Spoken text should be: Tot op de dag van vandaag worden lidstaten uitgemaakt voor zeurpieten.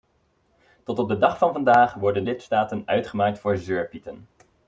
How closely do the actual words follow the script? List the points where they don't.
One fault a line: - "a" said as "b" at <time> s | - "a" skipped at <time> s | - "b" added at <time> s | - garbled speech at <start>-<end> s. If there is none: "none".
none